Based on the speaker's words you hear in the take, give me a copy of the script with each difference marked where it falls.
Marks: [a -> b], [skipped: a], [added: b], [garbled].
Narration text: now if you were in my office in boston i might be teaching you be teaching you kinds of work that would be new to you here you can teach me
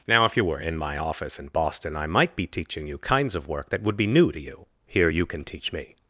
now if you were in my office in boston i might be teaching you [skipped: be teaching you] kinds of work that would be new to you here you can teach me